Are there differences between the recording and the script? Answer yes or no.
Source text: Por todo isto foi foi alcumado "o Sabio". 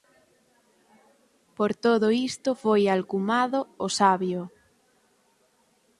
yes